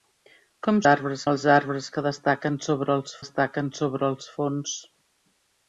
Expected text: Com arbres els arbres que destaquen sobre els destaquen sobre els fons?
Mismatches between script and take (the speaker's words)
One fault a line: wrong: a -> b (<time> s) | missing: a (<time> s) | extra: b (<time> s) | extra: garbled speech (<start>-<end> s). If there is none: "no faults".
no faults